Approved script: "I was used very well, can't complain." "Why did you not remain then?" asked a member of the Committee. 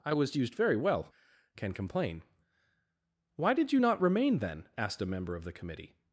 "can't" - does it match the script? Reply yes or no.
no